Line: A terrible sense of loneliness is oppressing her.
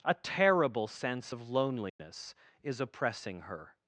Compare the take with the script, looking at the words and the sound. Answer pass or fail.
fail